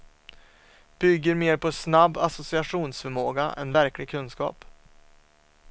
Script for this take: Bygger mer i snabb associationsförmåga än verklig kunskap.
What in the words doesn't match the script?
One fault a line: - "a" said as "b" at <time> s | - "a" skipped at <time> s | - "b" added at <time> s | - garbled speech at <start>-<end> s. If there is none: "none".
- "i" said as "på" at 1.6 s